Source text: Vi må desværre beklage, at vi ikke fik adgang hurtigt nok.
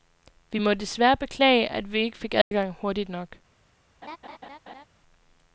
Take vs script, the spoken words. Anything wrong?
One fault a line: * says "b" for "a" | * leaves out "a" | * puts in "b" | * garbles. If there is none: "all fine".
all fine